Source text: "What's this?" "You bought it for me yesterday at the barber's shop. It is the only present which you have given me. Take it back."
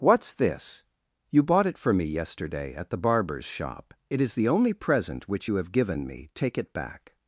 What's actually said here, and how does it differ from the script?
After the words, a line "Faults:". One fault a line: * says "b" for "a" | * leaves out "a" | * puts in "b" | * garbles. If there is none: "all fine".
"What's this?" "You bought it for me yesterday at the barber's shop. It is the only present which you have given me. Take it back."
Faults:
all fine